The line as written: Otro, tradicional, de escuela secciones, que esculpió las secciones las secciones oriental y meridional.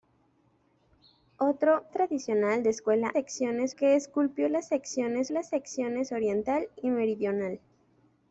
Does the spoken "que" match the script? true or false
true